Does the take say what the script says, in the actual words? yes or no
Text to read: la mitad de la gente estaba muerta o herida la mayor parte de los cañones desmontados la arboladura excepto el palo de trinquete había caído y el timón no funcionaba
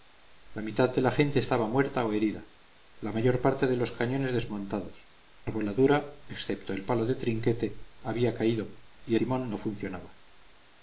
no